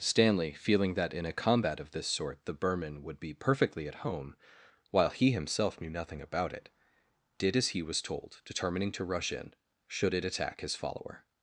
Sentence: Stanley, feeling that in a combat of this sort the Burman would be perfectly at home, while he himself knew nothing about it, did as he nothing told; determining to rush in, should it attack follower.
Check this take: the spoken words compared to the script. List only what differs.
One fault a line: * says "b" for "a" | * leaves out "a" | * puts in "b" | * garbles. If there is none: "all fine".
* says "was" for "nothing"
* puts in "his"